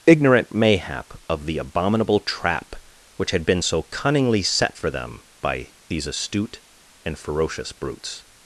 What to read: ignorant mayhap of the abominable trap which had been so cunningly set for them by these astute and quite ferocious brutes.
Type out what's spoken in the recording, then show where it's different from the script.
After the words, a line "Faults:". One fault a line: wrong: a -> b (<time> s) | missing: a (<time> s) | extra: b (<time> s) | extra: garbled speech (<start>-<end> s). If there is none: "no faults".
ignorant mayhap of the abominable trap which had been so cunningly set for them by these astute and ferocious brutes.
Faults:
missing: quite (7.2 s)